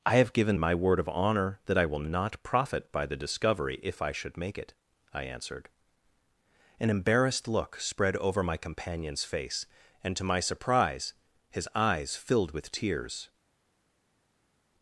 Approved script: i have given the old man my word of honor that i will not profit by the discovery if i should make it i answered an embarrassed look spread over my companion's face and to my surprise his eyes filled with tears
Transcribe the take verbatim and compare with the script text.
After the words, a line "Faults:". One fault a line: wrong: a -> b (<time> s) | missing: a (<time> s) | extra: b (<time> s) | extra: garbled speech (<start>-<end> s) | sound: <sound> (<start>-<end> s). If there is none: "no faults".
i have given my word of honor that i will not profit by the discovery if i should make it i answered an embarrassed look spread over my companion's face and to my surprise his eyes filled with tears
Faults:
missing: the old man (0.6 s)